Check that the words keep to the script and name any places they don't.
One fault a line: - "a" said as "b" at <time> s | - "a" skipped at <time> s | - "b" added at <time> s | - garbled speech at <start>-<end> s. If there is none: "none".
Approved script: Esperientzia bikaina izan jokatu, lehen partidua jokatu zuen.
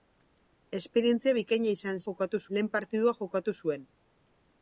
none